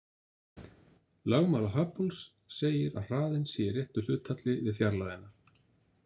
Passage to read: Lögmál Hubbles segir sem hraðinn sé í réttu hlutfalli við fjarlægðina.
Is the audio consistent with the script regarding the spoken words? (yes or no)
no